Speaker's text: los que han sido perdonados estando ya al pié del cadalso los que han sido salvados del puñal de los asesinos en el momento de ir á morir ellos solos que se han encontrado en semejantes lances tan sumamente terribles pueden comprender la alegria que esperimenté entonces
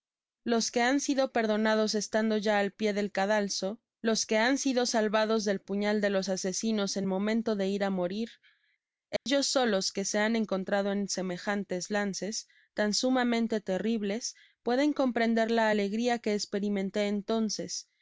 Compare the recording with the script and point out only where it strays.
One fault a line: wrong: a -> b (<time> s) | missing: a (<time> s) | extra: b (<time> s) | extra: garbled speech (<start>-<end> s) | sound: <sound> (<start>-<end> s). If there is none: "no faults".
missing: el (7.1 s)
sound: dropout (9.2-9.3 s)